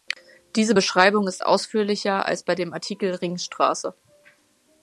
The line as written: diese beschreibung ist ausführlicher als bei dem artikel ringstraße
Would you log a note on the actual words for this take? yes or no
no